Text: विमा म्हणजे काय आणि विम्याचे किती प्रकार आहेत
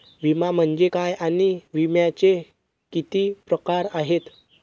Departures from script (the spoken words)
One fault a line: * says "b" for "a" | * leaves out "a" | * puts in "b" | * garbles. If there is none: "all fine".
all fine